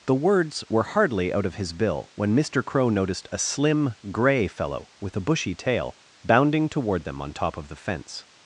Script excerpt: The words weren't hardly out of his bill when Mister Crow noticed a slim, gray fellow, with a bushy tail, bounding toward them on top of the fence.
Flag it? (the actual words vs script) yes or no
yes